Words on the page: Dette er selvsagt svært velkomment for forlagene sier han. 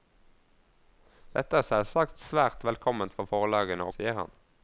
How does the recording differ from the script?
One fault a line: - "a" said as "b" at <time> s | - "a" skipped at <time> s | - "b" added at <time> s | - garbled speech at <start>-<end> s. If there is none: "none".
none